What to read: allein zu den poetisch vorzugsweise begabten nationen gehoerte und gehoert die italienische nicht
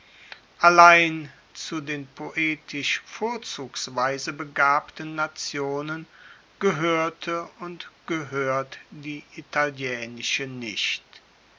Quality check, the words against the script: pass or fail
pass